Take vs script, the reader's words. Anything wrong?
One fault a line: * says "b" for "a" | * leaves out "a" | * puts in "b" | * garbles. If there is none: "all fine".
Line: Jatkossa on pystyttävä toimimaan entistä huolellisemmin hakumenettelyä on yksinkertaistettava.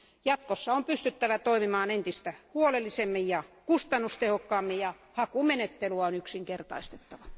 * puts in "ja kustannustehokkaammin ja"